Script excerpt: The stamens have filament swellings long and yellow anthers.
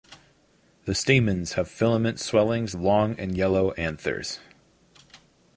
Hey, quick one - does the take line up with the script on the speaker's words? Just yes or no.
yes